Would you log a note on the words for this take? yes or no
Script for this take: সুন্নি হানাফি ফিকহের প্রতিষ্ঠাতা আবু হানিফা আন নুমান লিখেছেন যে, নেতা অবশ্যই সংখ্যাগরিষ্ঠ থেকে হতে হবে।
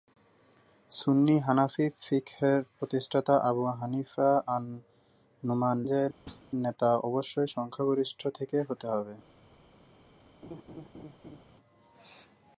yes